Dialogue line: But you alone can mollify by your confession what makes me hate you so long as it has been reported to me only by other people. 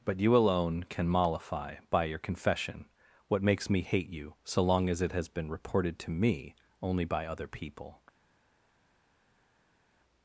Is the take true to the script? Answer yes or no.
yes